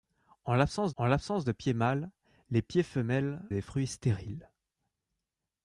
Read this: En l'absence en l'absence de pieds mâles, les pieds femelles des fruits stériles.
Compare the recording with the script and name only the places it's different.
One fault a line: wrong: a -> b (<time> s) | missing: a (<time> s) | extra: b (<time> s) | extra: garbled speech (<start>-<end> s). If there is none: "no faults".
no faults